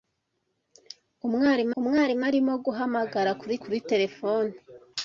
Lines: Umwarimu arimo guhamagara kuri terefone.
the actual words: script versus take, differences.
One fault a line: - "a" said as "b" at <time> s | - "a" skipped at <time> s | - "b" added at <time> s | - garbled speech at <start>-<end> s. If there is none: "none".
- "umwarimu" added at 1.8 s
- "kuri" added at 3.6 s